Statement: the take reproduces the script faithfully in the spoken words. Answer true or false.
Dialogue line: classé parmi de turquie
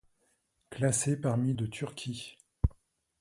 true